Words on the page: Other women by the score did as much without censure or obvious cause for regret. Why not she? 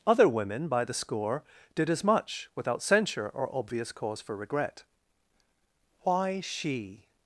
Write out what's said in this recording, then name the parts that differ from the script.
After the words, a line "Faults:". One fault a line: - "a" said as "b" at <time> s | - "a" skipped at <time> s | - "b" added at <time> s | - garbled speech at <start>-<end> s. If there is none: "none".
Other women by the score did as much without censure or obvious cause for regret. Why she?
Faults:
- "not" skipped at 6.4 s